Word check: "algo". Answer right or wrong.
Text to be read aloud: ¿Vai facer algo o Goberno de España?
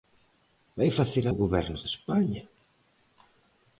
wrong